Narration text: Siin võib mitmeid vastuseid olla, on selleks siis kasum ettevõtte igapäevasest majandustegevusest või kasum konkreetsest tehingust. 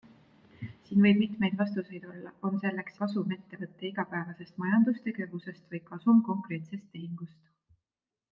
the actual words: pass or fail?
fail